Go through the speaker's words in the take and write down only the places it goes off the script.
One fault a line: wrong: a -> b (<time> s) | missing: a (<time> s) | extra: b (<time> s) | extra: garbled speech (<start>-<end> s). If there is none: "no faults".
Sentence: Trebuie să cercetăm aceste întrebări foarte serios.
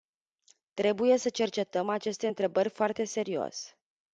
no faults